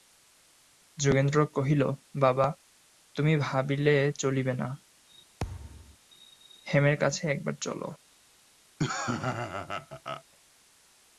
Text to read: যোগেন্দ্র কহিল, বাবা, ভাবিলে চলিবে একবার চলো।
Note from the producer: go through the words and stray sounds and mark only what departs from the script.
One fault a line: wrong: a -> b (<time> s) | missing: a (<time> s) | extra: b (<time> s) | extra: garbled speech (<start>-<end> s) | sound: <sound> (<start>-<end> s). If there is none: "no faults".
extra: তুমি (3.1 s)
extra: না হেমের কাছে (4.5 s)
sound: thud (5.4-6.0 s)
sound: laugh (8.8-10.2 s)